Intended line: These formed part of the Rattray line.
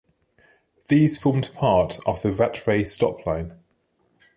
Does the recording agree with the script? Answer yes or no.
no